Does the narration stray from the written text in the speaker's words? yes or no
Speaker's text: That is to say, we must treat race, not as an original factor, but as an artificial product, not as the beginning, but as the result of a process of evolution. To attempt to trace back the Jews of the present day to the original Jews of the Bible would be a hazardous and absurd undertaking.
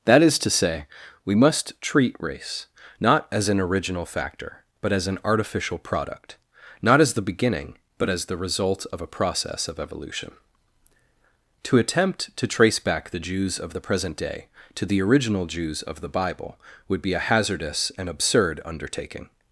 no